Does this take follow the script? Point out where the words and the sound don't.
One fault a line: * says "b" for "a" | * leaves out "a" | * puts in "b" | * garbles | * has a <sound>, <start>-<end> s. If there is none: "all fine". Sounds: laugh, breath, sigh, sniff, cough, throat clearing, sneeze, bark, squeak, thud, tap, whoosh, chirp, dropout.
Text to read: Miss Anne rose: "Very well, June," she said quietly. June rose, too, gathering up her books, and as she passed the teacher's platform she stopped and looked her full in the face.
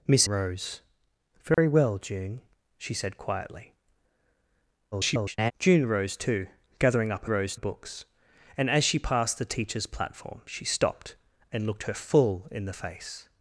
* leaves out "Anne"
* has a dropout, 1.5-1.6 s
* garbles
* says "rose" for "her"